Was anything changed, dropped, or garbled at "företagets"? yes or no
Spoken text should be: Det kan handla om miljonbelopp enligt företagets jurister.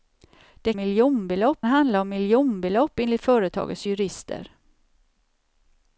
no